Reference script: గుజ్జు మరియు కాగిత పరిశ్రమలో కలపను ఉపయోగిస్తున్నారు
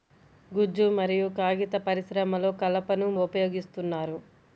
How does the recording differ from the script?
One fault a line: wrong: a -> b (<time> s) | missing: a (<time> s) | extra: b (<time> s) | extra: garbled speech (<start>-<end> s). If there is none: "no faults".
no faults